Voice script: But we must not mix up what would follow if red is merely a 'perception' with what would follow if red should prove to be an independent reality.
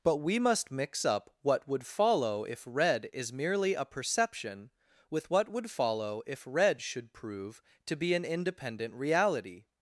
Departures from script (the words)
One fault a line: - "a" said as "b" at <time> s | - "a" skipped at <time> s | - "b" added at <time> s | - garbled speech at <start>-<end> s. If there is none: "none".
- "not" skipped at 0.7 s